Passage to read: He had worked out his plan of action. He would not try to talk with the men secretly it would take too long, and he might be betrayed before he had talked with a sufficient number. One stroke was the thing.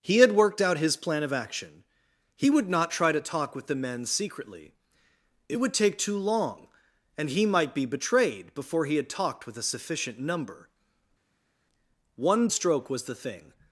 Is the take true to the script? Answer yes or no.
yes